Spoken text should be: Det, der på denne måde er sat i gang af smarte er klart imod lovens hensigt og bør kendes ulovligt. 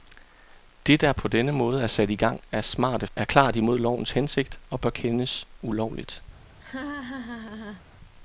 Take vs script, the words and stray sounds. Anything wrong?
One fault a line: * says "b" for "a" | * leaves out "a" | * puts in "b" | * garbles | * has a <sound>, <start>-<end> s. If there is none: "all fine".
* has a laugh, 6.6-7.8 s